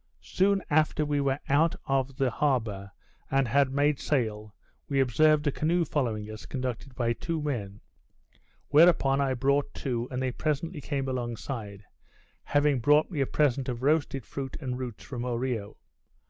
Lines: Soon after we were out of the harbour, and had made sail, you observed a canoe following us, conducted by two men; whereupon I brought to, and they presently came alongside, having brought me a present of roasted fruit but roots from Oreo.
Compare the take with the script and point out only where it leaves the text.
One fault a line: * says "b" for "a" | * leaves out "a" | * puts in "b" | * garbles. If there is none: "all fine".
* says "we" for "you"
* says "and" for "but"